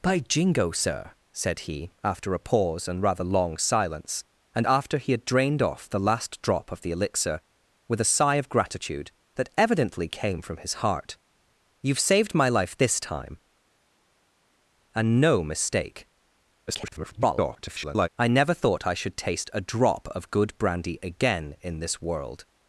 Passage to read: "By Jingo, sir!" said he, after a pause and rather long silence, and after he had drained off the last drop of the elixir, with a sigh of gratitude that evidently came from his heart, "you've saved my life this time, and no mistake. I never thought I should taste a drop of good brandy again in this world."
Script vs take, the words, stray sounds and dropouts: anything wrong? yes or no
yes